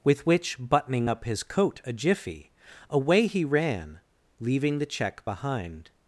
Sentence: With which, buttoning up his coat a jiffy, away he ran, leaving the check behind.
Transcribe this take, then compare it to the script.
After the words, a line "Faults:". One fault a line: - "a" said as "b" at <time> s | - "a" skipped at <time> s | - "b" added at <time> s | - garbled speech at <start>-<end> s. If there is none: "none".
With which, buttoning up his coat a jiffy, away he ran, leaving the check behind.
Faults:
none